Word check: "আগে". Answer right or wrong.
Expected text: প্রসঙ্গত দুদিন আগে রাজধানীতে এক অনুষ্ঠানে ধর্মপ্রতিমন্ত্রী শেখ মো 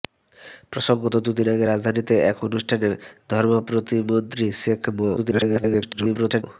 right